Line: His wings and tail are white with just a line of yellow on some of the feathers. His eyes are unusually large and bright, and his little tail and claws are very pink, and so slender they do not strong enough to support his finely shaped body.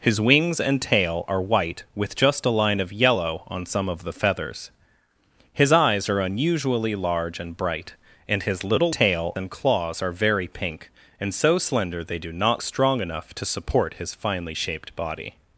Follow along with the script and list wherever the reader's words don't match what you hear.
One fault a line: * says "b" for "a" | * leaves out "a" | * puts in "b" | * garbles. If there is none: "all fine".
all fine